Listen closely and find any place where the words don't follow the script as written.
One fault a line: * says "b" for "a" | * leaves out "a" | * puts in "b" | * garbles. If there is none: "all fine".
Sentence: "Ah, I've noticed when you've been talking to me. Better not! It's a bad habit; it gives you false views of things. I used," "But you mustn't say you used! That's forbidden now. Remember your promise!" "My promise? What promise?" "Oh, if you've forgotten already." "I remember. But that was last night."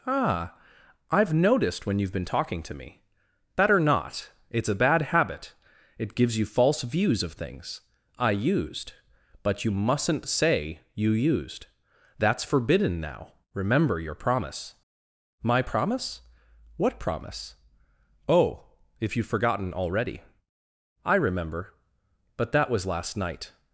all fine